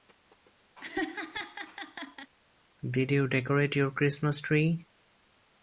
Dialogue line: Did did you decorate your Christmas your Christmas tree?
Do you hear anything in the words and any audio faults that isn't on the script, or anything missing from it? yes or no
yes